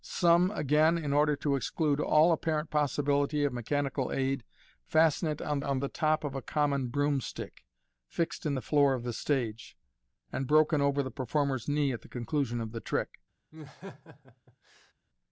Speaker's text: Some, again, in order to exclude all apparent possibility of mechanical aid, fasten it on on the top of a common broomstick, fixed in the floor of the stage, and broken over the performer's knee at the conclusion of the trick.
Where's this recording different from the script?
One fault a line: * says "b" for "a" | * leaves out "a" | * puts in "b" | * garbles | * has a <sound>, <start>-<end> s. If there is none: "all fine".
* has a laugh, 13.5-14.9 s